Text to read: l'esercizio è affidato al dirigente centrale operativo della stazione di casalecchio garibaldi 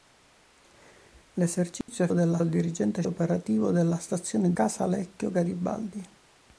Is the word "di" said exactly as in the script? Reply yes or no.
no